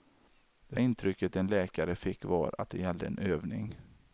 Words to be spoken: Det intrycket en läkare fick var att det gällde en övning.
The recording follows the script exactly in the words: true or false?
true